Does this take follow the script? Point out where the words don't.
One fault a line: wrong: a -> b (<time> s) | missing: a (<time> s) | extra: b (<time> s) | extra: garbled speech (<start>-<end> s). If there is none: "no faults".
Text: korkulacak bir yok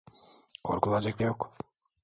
no faults